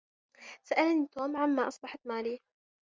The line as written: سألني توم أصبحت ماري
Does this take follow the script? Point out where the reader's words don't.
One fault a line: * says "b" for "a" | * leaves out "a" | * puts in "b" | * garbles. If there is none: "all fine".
* puts in "عما"